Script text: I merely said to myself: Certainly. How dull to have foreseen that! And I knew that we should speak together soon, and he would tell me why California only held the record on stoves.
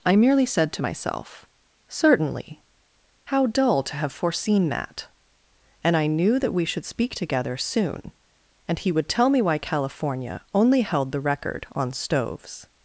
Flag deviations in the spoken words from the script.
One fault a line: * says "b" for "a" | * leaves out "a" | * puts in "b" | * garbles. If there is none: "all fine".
all fine